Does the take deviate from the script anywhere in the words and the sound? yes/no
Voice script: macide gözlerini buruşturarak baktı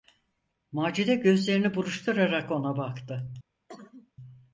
yes